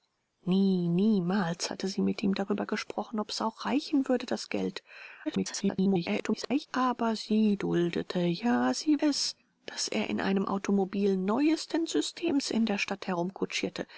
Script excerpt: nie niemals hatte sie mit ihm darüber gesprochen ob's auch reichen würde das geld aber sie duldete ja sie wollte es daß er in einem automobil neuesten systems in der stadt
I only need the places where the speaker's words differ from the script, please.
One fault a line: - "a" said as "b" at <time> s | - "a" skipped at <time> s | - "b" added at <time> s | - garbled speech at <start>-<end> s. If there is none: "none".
- garbled speech at 5.3-6.7 s
- "wollte" skipped at 9.0 s